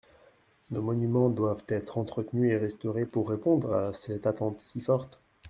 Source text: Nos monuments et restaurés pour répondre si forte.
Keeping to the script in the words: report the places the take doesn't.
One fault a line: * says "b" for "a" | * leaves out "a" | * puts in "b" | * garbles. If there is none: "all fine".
* puts in "doivent être entretenus"
* puts in "à cette attente"